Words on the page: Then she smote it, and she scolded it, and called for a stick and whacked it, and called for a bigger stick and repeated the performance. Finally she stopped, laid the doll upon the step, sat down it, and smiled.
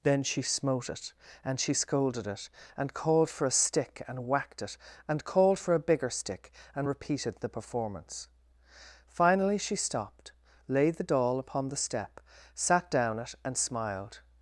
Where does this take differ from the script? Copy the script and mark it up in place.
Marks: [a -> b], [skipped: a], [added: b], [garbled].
Then she smote it, and she scolded it, and called for a stick and whacked it, and called for a bigger stick and repeated the performance. Finally she stopped, laid the doll upon the step, sat down it, and smiled.